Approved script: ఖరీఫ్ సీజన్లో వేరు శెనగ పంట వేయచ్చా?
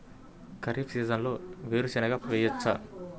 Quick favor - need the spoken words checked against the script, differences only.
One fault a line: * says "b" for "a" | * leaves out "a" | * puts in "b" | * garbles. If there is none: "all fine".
* leaves out "పంట"